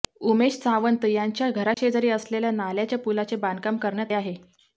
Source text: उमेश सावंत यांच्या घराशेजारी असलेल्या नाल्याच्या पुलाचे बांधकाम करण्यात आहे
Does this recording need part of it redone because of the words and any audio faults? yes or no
yes